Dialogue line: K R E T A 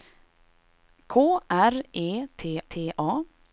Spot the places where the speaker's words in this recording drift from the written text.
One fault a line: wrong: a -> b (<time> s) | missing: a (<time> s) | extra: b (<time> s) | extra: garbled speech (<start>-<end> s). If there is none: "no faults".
extra: T (2.7 s)